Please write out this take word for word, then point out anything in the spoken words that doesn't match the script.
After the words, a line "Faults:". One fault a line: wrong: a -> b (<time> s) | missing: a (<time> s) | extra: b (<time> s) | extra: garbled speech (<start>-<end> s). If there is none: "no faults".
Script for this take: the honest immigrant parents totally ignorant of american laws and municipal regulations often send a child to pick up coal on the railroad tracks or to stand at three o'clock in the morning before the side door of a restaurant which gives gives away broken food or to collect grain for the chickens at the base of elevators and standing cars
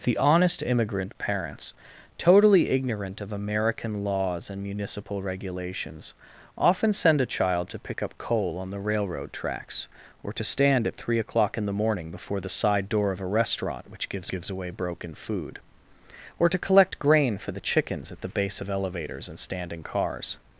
the honest immigrant parents totally ignorant of american laws and municipal regulations often send a child to pick up coal on the railroad tracks or to stand at three o'clock in the morning before the side door of a restaurant which gives gives away broken food or to collect grain for the chickens at the base of elevators and standing cars
Faults:
no faults